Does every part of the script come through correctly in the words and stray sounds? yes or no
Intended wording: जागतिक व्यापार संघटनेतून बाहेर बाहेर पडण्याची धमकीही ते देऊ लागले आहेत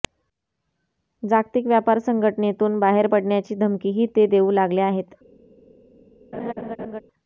no